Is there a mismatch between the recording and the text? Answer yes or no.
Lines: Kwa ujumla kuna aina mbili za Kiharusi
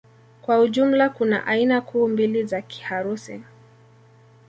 yes